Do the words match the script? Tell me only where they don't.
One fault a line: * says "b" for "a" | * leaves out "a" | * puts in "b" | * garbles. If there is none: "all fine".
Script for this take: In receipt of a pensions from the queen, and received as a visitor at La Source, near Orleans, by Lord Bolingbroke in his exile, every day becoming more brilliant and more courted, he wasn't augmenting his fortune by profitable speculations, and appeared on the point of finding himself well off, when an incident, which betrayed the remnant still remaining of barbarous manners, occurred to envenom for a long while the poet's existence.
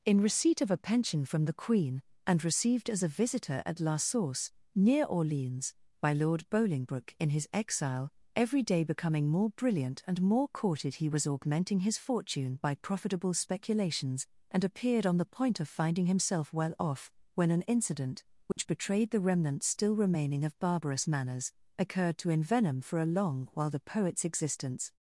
* says "pension" for "pensions"
* says "was" for "wasn't"